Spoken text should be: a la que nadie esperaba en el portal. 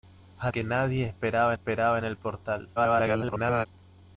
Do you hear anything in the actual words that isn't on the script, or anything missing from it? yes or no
yes